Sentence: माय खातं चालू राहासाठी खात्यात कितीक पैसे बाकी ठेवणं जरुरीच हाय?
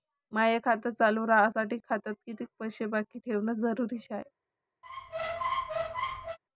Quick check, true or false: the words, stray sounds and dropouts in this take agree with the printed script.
false